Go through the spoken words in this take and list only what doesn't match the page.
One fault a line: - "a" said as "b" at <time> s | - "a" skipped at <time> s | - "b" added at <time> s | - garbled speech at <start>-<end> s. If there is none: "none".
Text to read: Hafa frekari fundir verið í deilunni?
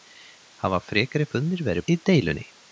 none